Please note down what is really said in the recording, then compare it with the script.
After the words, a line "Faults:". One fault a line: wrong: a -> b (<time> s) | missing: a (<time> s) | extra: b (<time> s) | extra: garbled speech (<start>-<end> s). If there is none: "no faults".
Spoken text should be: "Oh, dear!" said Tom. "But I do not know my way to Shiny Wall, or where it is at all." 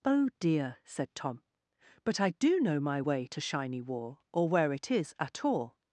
"Oh, dear!" said Tom. "But I do know my way to Shiny Wall, or where it is at all."
Faults:
missing: not (2.6 s)